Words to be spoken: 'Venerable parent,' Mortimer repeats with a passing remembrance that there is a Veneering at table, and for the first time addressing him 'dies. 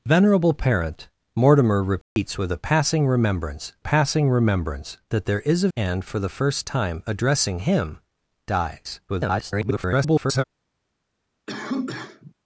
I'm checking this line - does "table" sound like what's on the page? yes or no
no